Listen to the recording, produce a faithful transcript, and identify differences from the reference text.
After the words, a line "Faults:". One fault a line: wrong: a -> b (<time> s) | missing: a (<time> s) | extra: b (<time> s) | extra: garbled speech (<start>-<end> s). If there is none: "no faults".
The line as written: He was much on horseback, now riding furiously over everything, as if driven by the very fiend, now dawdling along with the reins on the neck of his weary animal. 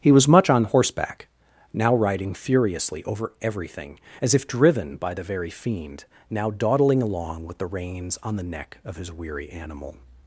He was much on horseback, now riding furiously over everything, as if driven by the very fiend, now dawdling along with the reins on the neck of his weary animal.
Faults:
no faults